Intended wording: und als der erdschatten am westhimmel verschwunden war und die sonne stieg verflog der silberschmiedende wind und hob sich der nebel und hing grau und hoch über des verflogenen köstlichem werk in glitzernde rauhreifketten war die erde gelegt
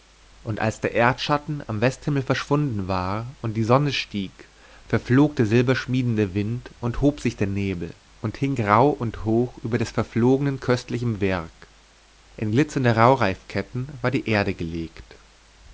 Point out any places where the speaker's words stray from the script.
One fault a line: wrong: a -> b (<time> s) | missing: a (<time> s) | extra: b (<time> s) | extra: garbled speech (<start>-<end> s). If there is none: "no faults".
no faults